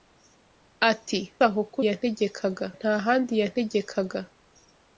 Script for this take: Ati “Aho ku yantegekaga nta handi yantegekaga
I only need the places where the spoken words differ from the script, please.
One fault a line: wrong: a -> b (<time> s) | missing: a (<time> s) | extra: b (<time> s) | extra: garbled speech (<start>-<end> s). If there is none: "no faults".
no faults